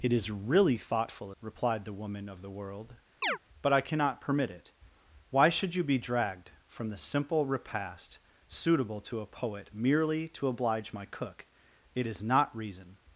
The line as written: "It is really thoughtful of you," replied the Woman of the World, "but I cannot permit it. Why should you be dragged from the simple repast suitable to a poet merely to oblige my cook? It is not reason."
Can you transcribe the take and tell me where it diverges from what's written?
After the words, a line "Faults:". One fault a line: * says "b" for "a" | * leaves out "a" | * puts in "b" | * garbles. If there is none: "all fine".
"It is really thoughtful," replied the Woman of the World, "but I cannot permit it. Why should you be dragged from the simple repast suitable to a poet merely to oblige my cook? It is not reason."
Faults:
* leaves out "of you"